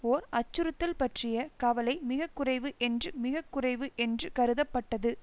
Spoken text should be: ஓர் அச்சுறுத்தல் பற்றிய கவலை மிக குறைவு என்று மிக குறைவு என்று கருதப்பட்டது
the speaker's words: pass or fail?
pass